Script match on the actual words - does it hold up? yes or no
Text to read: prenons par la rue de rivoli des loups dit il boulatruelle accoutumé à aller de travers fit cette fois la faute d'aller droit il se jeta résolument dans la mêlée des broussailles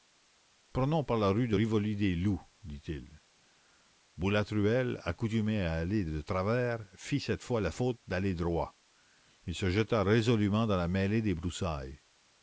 yes